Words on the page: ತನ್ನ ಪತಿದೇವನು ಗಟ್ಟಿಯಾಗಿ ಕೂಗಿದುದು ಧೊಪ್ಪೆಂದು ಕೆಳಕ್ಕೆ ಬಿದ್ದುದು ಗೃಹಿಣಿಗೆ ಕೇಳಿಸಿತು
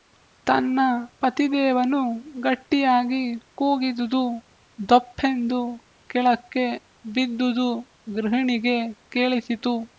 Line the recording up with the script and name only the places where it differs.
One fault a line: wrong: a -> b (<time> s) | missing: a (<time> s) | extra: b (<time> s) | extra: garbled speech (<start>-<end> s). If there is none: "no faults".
no faults